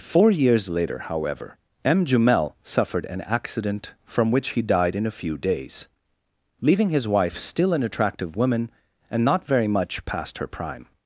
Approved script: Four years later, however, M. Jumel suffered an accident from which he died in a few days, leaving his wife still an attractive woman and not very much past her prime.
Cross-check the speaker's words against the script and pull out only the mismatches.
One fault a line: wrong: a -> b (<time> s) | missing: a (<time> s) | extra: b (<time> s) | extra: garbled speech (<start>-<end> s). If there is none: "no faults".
no faults